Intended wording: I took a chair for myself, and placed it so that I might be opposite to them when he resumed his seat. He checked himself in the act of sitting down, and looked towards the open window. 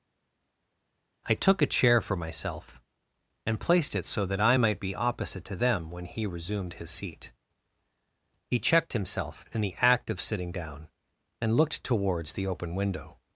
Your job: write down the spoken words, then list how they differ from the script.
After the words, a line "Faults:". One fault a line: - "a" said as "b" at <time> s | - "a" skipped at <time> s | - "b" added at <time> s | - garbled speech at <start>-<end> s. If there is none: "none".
I took a chair for myself, and placed it so that I might be opposite to them when he resumed his seat. He checked himself in the act of sitting down, and looked towards the open window.
Faults:
none